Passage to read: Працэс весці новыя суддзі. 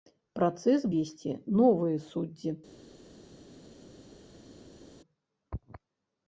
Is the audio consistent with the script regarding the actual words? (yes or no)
yes